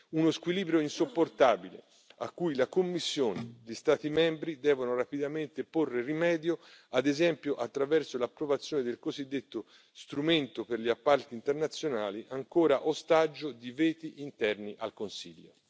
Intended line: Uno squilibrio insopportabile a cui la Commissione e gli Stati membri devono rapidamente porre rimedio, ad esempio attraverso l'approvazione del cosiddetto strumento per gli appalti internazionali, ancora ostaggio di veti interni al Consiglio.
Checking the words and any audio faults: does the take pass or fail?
pass